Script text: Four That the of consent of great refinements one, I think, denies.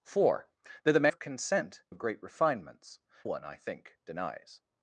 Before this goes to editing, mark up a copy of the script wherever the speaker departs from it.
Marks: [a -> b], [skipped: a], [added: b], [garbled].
Four That the of consent of great refinements one, I think, denies.